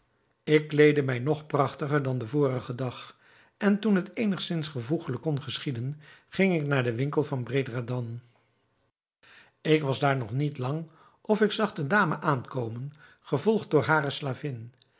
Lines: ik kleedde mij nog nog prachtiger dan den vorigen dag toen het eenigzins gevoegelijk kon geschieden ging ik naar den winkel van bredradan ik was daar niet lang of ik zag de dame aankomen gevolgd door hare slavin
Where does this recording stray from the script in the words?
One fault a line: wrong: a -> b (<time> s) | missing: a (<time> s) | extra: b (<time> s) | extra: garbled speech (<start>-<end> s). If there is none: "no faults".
missing: nog (1.5 s)
extra: en (3.6 s)
extra: nog (10.2 s)